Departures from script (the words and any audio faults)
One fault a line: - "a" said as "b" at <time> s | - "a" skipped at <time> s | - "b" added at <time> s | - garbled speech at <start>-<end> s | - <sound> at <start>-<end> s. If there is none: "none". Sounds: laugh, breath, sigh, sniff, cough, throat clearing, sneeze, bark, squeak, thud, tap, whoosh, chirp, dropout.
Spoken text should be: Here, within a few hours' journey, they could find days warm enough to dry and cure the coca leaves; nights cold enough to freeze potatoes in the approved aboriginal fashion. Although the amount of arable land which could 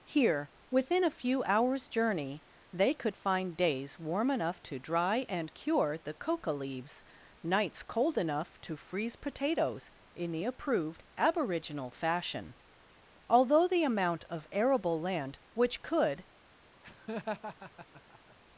- laugh at 16.8-18.4 s